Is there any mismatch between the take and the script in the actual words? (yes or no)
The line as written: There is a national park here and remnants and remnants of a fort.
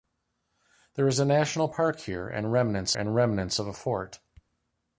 no